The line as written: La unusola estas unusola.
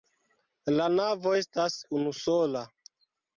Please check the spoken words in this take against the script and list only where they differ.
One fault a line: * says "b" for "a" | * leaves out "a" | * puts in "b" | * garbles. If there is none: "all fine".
* says "navo" for "unusola"